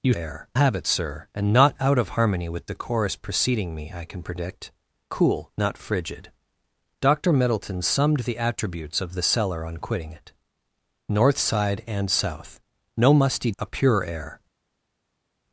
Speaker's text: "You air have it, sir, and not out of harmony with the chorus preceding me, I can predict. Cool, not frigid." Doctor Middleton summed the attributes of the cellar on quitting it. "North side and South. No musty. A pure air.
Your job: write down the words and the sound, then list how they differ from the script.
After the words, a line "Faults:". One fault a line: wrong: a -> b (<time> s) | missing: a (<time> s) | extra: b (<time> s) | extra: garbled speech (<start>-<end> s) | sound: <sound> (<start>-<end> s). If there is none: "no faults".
"You air have it, sir, and not out of harmony with the chorus preceding me, I can predict. Cool, not frigid." Doctor Middleton summed the attributes of the cellar on quitting it. "North side and South. No musty. A pure air.
Faults:
no faults